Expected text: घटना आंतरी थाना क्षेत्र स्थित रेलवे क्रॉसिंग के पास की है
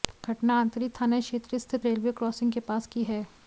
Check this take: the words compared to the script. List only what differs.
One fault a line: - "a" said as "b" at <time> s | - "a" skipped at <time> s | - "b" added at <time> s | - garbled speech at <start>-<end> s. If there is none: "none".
none